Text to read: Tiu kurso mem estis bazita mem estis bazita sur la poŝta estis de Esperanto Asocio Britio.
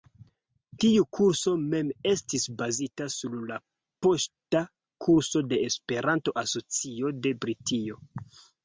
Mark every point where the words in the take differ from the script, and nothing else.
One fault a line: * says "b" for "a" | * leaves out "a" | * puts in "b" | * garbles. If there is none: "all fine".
* leaves out "mem estis bazita"
* says "kurso" for "estis"
* puts in "de"